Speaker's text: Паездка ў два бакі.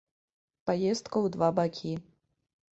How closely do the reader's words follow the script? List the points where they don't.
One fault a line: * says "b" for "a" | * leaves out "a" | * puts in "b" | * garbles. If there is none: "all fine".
all fine